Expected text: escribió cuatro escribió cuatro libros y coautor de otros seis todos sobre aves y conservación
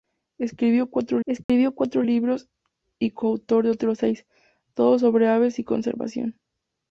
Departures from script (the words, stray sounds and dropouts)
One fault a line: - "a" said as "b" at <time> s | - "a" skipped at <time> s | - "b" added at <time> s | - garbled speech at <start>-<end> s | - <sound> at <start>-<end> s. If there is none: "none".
- dropout at 1.4-1.5 s